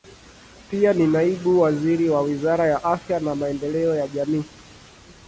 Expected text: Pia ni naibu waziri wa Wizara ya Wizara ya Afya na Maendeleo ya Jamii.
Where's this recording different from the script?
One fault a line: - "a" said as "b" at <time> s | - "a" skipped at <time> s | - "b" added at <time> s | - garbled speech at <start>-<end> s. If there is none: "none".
- "Wizara ya" skipped at 2.8 s